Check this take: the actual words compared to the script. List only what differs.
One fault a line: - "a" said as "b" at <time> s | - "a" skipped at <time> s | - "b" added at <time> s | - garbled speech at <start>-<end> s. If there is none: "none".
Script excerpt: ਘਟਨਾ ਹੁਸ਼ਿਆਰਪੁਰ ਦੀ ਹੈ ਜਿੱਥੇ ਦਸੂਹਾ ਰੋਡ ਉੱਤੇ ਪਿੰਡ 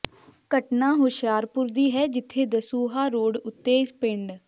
none